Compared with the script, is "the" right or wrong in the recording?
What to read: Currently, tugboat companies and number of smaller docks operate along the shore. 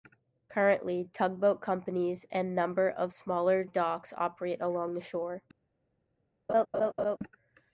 right